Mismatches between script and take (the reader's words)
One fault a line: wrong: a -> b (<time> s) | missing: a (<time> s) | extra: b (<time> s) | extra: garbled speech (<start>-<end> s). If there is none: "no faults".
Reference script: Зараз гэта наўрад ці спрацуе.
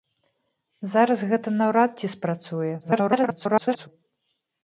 extra: garbled speech (2.8-3.9 s)